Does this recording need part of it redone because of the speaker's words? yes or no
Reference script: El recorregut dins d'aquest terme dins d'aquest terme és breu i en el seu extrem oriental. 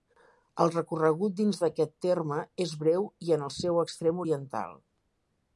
yes